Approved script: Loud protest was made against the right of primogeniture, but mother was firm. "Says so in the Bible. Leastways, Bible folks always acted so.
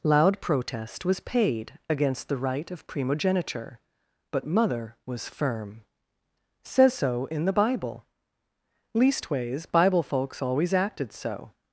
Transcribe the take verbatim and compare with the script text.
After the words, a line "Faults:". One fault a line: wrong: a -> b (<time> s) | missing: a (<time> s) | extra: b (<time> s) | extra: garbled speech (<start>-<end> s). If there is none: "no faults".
Loud protest was paid against the right of primogeniture, but mother was firm. "Says so in the Bible. Leastways, Bible folks always acted so.
Faults:
wrong: made -> paid (1.2 s)